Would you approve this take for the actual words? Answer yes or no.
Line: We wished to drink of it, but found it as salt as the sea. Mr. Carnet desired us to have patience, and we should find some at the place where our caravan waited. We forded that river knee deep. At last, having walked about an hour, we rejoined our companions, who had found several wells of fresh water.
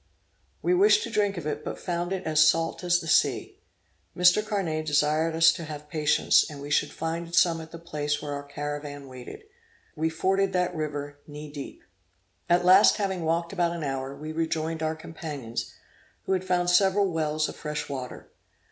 yes